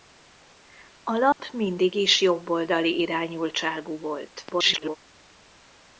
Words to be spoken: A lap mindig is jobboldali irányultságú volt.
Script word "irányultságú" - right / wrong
right